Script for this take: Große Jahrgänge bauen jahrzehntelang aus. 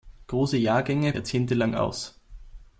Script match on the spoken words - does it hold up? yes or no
no